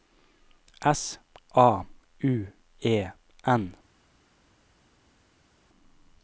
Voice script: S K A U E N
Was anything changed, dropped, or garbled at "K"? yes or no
yes